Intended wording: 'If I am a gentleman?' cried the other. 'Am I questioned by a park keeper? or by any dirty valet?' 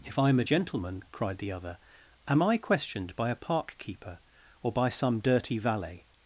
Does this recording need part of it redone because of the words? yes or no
yes